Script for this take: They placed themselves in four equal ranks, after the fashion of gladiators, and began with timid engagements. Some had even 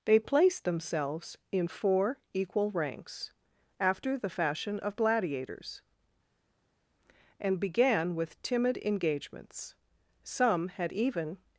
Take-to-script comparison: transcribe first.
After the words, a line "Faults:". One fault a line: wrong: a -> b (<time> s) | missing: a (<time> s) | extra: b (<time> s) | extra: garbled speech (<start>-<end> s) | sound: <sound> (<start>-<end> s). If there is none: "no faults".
They placed themselves in four equal ranks, after the fashion of gladiators, and began with timid engagements. Some had even
Faults:
no faults